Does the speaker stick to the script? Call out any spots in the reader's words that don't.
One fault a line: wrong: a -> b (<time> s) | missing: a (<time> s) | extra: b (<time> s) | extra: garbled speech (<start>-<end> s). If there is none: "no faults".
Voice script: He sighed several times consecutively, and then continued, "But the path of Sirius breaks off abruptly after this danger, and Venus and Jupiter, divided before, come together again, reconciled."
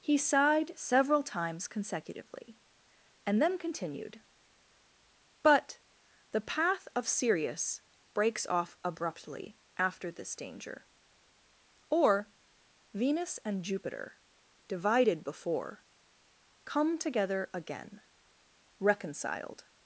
wrong: and -> or (11.9 s)